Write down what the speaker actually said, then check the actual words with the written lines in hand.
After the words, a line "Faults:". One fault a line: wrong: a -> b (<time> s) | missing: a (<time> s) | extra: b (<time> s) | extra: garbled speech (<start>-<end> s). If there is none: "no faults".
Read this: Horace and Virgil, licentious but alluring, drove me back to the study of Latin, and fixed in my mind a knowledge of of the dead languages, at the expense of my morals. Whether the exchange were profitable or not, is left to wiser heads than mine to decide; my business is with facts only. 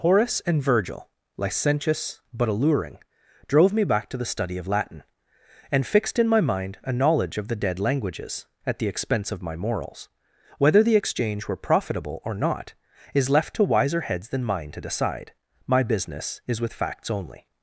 Horace and Virgil, licentious but alluring, drove me back to the study of Latin, and fixed in my mind a knowledge of the dead languages, at the expense of my morals. Whether the exchange were profitable or not, is left to wiser heads than mine to decide; my business is with facts only.
Faults:
missing: of (7.5 s)